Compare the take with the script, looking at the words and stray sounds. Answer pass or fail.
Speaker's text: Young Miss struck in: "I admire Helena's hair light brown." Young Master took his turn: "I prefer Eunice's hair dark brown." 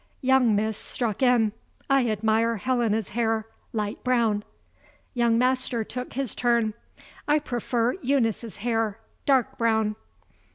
pass